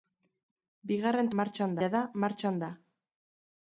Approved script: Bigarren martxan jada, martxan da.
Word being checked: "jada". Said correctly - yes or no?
yes